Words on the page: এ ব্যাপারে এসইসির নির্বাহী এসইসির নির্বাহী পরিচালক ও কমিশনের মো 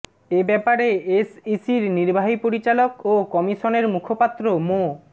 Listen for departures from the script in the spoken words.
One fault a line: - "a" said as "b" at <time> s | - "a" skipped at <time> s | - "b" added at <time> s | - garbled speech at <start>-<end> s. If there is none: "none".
- "এসইসির নির্বাহী" skipped at 2.4 s
- "মুখপাত্র" added at 3.9 s